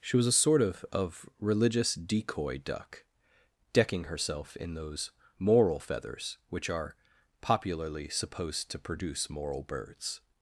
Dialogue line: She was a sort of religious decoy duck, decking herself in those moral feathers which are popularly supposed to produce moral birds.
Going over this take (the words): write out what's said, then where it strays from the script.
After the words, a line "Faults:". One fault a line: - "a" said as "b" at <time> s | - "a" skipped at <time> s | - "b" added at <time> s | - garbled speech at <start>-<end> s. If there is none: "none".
She was a sort of of religious decoy duck, decking herself in those moral feathers which are popularly supposed to produce moral birds.
Faults:
- "of" added at 0.9 s